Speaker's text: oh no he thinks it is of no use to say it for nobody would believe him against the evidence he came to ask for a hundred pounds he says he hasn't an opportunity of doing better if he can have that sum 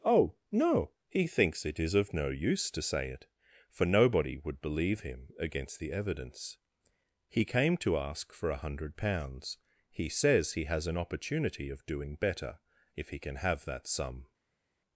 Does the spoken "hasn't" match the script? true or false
false